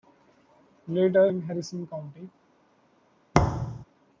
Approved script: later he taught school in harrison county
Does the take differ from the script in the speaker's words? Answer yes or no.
yes